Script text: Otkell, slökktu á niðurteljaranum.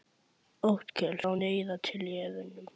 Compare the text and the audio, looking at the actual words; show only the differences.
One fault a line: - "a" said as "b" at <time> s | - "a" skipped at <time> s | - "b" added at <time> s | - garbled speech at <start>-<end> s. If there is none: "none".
- "slökktu" skipped at 1.2 s